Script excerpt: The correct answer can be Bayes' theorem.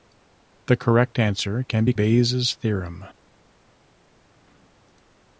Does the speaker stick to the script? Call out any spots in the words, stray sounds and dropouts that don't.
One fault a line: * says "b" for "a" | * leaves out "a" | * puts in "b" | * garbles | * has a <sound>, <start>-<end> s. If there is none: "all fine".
all fine